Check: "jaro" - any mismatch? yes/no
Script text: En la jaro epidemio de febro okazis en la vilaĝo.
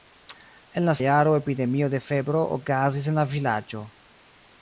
no